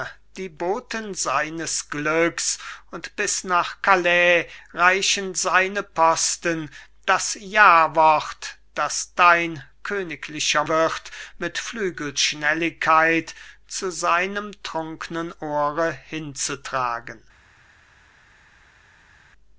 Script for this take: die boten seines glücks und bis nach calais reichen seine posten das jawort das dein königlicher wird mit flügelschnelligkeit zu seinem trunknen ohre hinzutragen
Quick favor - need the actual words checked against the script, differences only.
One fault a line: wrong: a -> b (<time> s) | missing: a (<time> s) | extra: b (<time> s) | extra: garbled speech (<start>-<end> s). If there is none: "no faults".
no faults